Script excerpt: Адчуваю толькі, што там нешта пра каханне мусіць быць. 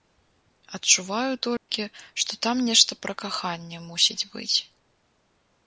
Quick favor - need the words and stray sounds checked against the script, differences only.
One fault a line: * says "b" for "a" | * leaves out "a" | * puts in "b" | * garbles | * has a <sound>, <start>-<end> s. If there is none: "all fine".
* has a dropout, 1.6-1.7 s